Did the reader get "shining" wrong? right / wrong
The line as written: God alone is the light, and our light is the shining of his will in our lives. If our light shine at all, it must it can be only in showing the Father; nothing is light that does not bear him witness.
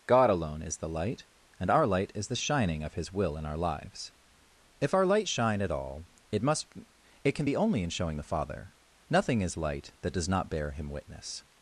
right